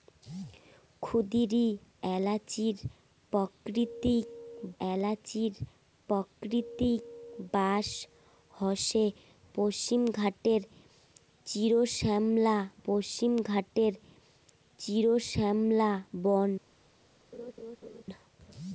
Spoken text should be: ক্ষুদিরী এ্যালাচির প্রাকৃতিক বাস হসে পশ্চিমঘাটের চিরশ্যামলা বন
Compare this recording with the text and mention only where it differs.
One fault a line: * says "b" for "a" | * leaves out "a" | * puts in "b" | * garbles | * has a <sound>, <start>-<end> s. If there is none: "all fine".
* puts in "এ্যালাচির প্রাকৃতিক"
* puts in "পশ্চিমঘাটের চিরশ্যামলা"
* has a laugh, 17.3-18.0 s